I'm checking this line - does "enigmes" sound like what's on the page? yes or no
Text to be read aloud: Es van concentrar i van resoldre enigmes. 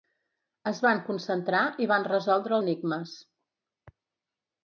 yes